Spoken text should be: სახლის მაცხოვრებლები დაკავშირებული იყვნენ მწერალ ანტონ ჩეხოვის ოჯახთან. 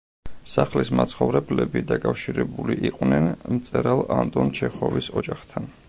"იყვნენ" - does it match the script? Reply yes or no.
yes